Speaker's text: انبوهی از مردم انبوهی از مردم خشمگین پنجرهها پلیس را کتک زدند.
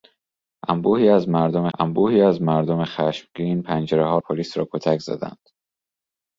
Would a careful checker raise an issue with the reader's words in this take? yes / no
no